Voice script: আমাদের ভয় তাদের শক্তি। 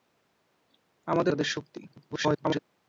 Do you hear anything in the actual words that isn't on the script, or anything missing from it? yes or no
yes